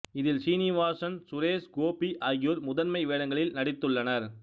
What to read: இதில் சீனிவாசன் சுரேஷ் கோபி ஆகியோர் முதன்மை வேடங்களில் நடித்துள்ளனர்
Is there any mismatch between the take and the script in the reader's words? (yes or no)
no